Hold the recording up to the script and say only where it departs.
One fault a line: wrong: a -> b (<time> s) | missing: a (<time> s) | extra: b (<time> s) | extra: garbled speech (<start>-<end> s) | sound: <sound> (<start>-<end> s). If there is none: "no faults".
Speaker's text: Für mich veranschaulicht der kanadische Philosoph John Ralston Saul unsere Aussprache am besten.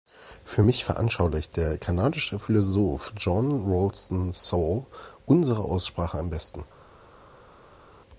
no faults